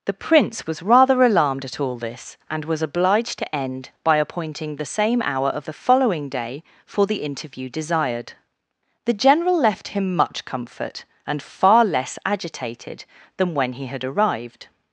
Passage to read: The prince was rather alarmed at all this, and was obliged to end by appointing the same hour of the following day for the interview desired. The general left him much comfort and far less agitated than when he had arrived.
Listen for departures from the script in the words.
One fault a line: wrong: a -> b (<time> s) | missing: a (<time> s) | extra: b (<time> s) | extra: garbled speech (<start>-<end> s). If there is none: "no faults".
no faults